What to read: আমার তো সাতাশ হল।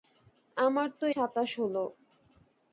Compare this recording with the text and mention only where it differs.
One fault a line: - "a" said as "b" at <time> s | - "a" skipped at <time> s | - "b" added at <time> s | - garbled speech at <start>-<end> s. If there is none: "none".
none